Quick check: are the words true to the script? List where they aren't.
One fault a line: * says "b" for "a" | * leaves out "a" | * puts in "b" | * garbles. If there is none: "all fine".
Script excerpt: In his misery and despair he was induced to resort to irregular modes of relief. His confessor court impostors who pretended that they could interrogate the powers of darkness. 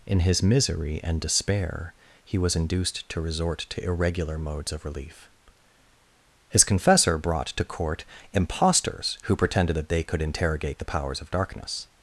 * puts in "brought to"